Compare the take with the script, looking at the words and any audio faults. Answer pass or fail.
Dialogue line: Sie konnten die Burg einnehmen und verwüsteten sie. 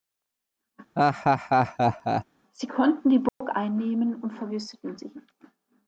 fail